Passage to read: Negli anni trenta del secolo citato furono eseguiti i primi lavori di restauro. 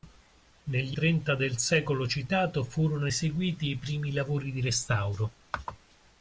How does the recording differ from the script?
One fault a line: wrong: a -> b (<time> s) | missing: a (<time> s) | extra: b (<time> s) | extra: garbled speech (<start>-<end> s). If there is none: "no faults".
missing: anni (1.0 s)